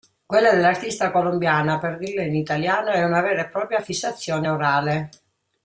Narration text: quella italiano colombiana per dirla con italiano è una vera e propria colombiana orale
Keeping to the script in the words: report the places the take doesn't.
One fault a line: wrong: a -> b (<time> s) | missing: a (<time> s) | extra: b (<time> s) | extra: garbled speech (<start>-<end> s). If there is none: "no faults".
wrong: italiano -> dell'artista (0.5 s)
wrong: con -> in (2.2 s)
wrong: colombiana -> fissazione (3.8 s)